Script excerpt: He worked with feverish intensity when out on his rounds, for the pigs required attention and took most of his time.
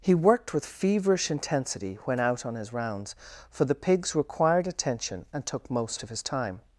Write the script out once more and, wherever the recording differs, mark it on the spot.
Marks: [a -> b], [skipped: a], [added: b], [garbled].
He worked with feverish intensity when out on his rounds, for the pigs required attention and took most of his time.